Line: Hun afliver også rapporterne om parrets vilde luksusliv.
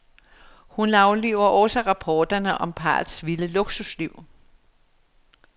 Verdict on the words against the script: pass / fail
pass